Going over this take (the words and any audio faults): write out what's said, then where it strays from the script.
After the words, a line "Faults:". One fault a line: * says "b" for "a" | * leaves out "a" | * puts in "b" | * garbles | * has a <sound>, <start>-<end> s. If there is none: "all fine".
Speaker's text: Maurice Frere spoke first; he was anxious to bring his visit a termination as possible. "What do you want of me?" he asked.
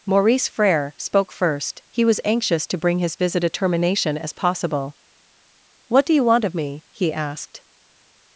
Maurice Frere spoke first; he was anxious to bring his visit a termination as possible. "What do you want of me?" he asked.
Faults:
all fine